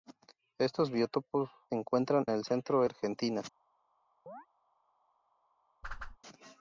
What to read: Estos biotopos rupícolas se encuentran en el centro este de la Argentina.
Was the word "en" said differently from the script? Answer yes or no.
yes